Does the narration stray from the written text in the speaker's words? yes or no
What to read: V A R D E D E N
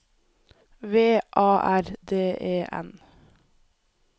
yes